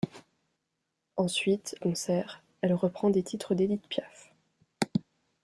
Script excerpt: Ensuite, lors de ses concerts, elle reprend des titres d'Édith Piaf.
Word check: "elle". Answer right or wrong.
right